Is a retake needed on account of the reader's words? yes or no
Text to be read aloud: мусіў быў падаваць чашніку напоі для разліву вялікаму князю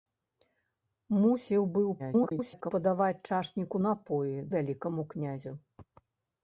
yes